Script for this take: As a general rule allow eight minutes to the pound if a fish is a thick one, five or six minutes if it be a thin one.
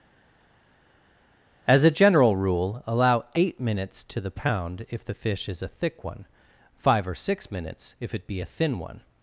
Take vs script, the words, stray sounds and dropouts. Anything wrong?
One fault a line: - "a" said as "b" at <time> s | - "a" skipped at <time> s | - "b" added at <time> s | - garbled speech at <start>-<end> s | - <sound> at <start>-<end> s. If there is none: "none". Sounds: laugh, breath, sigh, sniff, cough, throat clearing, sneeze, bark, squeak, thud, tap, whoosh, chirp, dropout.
- "a" said as "the" at 5.0 s